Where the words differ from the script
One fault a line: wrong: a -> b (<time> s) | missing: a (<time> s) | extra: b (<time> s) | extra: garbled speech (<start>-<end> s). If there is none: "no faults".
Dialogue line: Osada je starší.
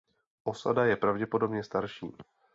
extra: pravděpodobně (0.9 s)